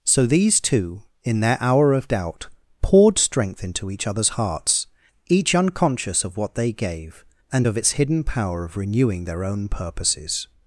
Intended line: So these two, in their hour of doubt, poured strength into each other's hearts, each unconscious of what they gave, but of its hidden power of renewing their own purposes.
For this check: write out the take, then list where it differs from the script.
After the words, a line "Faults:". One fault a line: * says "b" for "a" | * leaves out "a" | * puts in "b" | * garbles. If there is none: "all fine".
So these two, in their hour of doubt, poured strength into each other's hearts, each unconscious of what they gave, and of its hidden power of renewing their own purposes.
Faults:
* says "and" for "but"